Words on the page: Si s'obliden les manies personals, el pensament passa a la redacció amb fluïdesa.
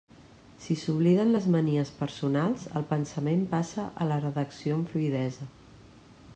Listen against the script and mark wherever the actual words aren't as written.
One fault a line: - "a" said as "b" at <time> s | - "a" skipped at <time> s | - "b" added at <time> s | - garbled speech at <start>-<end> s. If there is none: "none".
none